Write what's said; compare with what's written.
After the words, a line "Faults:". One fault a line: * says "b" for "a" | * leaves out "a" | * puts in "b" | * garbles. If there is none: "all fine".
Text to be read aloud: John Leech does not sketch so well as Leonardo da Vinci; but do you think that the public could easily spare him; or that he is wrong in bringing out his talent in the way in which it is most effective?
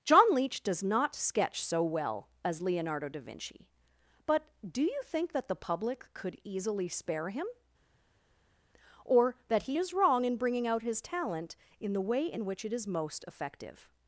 John Leech does not sketch so well as Leonardo da Vinci; but do you think that the public could easily spare him; or that he is wrong in bringing out his talent in the way in which it is most effective?
Faults:
all fine